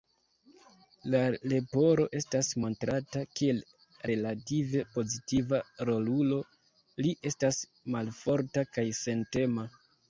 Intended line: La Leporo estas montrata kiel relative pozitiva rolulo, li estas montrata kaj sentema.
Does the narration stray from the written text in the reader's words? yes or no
yes